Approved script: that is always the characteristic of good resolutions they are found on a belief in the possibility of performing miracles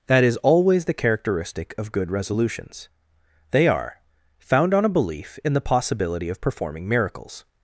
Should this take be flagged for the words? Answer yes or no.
no